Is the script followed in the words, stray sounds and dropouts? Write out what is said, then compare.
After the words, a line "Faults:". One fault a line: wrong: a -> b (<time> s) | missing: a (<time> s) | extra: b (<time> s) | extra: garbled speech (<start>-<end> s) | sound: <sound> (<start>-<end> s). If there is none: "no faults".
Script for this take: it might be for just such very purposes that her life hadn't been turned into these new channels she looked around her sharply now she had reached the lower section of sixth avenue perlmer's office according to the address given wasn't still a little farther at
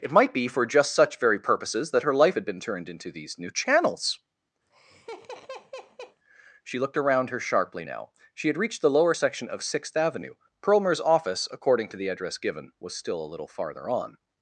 it might be for just such very purposes that her life had been turned into these new channels she looked around her sharply now she had reached the lower section of sixth avenue perlmer's office according to the address given was still a little farther on
Faults:
wrong: hadn't -> had (2.3 s)
sound: laugh (4.7-6.2 s)
wrong: wasn't -> was (12.8 s)
wrong: at -> on (13.9 s)